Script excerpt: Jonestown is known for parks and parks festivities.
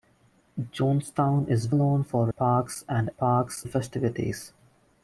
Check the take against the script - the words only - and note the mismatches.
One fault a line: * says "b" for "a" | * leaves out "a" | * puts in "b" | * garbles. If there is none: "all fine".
all fine